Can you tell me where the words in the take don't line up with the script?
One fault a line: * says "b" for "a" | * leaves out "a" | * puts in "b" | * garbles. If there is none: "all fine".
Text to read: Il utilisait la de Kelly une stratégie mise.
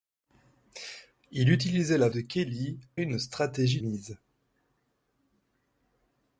all fine